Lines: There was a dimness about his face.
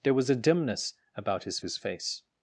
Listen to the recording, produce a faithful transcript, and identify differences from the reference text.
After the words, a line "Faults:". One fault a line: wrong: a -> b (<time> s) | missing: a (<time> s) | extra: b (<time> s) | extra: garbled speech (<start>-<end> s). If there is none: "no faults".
There was a dimness about his his face.
Faults:
extra: his (1.6 s)